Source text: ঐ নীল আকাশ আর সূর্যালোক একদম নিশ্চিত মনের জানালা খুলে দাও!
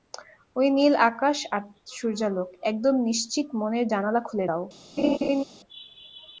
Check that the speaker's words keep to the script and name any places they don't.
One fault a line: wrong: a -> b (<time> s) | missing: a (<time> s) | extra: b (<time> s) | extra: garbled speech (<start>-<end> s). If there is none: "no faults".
no faults